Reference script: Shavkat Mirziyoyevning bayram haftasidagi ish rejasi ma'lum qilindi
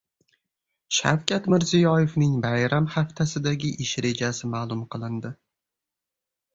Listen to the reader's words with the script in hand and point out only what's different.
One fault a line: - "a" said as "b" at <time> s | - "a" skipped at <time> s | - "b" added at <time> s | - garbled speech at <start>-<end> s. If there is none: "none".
none